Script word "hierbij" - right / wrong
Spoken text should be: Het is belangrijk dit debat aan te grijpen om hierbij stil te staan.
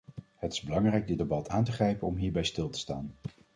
right